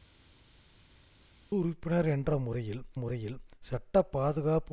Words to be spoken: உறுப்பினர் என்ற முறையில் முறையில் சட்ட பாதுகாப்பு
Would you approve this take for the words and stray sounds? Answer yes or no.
yes